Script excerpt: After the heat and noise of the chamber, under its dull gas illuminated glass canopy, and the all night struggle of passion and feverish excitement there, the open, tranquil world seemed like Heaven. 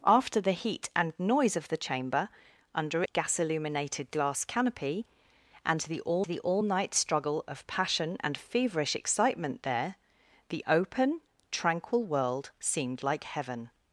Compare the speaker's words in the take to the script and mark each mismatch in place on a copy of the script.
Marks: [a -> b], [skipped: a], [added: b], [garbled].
After the heat and noise of the chamber, under [skipped: its dull] gas illuminated glass canopy, and the all [added: the all] night struggle of passion and feverish excitement there, the open, tranquil world seemed like Heaven.